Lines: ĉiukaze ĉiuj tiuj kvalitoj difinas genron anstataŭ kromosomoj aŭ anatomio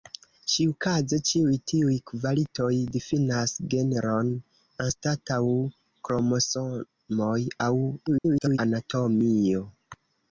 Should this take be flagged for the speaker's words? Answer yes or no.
yes